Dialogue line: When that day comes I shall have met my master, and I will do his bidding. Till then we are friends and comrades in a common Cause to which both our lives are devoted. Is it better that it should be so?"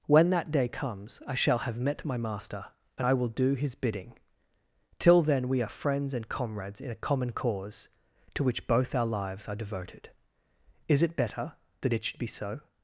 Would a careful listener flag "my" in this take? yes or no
no